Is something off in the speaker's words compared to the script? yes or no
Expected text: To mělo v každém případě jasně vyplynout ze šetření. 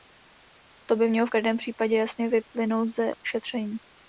yes